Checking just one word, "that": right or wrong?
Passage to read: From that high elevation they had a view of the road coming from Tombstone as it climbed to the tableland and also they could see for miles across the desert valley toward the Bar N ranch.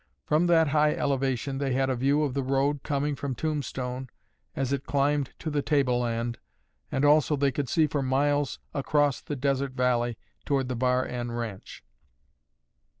right